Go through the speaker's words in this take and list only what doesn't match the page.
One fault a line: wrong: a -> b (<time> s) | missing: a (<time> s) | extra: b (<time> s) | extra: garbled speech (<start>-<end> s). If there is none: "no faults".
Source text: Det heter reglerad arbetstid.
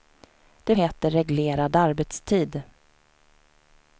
no faults